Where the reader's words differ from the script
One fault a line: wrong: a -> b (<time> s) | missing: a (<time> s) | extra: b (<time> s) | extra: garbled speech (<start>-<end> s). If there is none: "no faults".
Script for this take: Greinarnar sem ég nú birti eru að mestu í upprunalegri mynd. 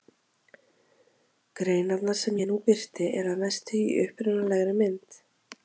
no faults